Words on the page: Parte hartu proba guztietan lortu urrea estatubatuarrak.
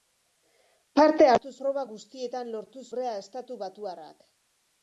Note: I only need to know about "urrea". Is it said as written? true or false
true